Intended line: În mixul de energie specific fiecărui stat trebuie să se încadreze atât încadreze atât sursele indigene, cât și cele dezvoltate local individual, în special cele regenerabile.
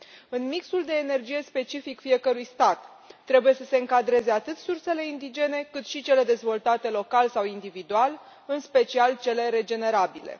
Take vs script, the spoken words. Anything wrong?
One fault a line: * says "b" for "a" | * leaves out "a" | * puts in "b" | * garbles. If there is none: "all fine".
* leaves out "încadreze atât"
* puts in "sau"